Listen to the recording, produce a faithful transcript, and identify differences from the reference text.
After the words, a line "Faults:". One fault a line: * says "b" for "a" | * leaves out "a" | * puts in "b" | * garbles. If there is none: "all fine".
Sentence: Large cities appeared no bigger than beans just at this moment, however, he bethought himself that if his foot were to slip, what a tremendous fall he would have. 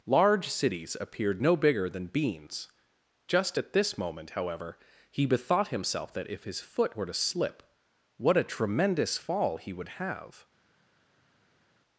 Large cities appeared no bigger than beans just at this moment, however, he bethought himself that if his foot were to slip, what a tremendous fall he would have.
Faults:
all fine